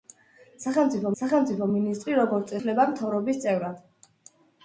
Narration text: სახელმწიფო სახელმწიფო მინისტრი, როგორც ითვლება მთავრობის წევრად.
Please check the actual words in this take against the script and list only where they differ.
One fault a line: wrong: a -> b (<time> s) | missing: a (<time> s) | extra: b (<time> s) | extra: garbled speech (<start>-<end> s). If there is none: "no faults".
no faults